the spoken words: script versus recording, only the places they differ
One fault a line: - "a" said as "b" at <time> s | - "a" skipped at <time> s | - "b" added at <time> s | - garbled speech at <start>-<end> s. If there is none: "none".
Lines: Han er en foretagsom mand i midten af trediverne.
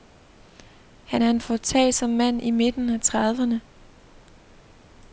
none